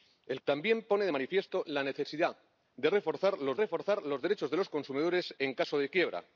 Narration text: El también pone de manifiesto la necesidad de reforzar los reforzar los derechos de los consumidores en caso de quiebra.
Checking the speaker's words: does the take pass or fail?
pass